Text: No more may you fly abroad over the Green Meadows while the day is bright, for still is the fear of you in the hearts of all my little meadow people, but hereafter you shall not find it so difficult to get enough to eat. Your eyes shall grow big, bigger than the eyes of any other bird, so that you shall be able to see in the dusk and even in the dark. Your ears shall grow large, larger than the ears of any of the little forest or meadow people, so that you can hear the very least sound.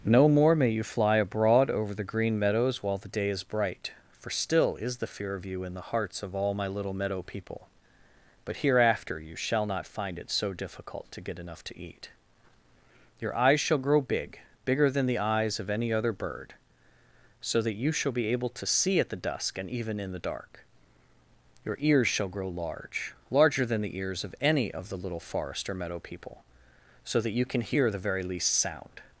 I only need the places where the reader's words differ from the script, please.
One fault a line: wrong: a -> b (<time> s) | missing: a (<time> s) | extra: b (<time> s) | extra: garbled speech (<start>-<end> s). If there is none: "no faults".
wrong: in -> at (19.0 s)